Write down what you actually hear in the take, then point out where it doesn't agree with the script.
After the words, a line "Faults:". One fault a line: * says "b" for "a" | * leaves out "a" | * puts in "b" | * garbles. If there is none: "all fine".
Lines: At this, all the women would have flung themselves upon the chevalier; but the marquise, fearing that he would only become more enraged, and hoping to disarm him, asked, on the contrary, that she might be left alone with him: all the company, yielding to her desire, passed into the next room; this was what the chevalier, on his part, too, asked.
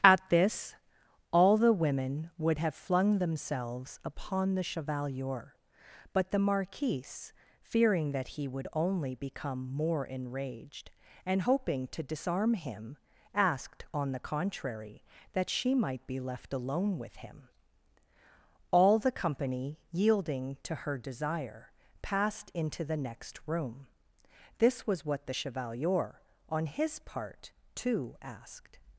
At this, all the women would have flung themselves upon the chevalier; but the marquise, fearing that he would only become more enraged, and hoping to disarm him, asked, on the contrary, that she might be left alone with him: all the company, yielding to her desire, passed into the next room; this was what the chevalier, on his part, too, asked.
Faults:
all fine